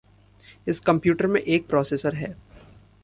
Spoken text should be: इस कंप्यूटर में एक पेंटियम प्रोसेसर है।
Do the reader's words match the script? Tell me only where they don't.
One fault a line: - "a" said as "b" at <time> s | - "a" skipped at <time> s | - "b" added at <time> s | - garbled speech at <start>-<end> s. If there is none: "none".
- "पेंटियम" skipped at 1.6 s